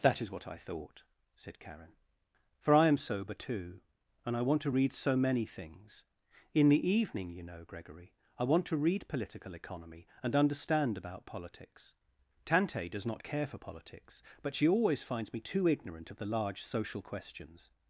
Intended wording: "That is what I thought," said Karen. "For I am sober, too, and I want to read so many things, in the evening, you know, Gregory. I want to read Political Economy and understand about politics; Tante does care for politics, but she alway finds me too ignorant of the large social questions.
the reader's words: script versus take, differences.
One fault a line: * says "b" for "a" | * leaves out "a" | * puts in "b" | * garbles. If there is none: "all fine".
* puts in "not"
* says "always" for "alway"